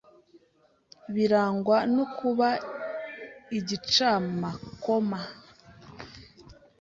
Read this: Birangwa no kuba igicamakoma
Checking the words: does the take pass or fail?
pass